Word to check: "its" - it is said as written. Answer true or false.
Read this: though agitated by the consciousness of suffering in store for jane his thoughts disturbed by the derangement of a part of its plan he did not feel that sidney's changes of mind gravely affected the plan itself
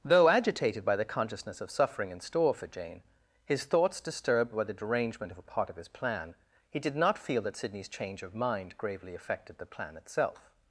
false